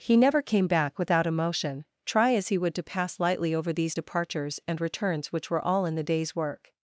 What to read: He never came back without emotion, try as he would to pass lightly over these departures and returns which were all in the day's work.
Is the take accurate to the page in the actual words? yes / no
yes